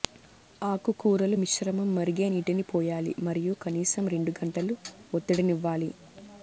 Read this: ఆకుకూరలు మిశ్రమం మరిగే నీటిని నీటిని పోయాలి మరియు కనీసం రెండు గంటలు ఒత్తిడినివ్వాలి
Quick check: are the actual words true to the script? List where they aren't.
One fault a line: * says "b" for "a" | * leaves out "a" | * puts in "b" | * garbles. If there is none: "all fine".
* leaves out "నీటిని"